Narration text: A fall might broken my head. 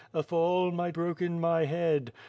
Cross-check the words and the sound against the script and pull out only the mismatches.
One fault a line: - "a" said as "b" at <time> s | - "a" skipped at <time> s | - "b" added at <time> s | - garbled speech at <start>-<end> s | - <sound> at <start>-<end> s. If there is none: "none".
none